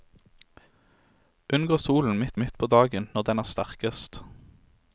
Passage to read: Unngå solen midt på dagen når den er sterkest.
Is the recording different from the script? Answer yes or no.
yes